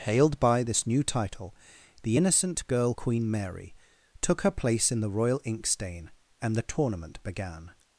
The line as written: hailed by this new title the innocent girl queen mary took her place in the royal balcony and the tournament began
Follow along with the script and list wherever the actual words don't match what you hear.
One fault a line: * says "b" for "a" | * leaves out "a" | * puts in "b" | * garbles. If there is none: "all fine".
* says "inkstain" for "balcony"